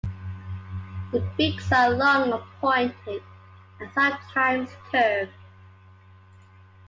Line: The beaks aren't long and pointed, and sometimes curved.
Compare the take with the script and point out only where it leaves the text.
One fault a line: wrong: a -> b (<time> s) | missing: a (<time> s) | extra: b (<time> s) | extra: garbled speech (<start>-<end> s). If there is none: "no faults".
wrong: aren't -> are (1.7 s)